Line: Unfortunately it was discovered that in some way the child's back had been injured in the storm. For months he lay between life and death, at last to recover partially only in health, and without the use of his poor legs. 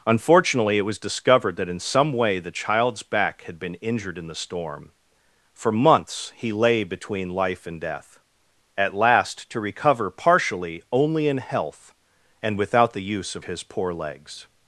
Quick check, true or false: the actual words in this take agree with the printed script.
true